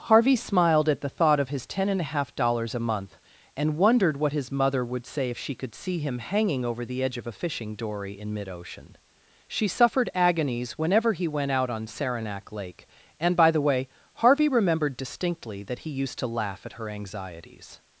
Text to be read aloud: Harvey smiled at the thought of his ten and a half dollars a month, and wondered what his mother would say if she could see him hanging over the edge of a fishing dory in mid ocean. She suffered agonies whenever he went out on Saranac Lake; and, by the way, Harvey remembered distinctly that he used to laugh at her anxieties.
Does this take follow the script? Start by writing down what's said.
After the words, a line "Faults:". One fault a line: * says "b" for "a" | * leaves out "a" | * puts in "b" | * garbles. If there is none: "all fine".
Harvey smiled at the thought of his ten and a half dollars a month, and wondered what his mother would say if she could see him hanging over the edge of a fishing dory in mid ocean. She suffered agonies whenever he went out on Saranac Lake; and, by the way, Harvey remembered distinctly that he used to laugh at her anxieties.
Faults:
all fine